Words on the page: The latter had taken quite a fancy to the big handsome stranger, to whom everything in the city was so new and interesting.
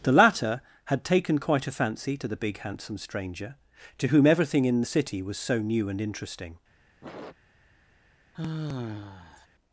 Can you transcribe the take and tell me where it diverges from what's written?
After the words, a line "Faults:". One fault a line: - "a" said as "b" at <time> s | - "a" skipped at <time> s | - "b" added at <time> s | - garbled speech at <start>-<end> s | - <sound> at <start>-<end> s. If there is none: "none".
The latter had taken quite a fancy to the big handsome stranger, to whom everything in the city was so new and interesting.
Faults:
- sniff at 7.0-7.4 s
- sigh at 8.3-9.5 s